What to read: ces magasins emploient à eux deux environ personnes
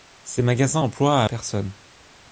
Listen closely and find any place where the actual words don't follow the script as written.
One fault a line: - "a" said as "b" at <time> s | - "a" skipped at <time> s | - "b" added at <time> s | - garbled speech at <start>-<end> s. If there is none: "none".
- "eux deux environ" skipped at 1.3 s